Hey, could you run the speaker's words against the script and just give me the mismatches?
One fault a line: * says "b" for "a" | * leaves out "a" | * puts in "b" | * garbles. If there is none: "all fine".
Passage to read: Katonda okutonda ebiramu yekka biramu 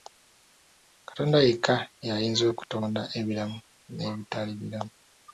* puts in "yekka y'ayinza"
* says "n'ebitali" for "yekka"